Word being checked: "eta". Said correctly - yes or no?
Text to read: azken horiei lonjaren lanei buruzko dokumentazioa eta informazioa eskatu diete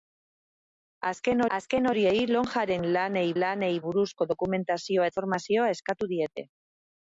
no